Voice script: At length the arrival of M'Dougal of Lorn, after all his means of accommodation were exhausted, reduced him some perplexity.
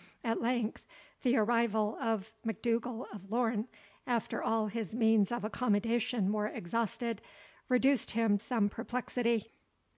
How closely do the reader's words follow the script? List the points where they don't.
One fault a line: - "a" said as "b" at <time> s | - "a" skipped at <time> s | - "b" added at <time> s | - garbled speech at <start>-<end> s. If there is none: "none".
none